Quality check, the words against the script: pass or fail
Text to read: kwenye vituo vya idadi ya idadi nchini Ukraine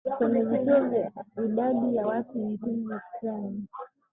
fail